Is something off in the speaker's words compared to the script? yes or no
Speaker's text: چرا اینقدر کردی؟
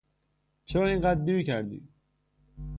yes